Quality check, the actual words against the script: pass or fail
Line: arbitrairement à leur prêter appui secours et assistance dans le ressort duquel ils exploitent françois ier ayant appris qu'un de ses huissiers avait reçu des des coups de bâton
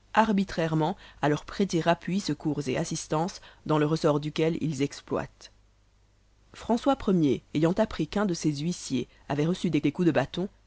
pass